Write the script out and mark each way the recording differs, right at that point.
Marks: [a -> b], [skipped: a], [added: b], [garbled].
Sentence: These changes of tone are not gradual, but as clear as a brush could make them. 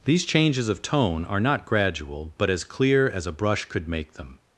These changes of tone are not gradual, but as clear as a brush could make them.